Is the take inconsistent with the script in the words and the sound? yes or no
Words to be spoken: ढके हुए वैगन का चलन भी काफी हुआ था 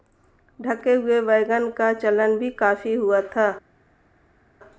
no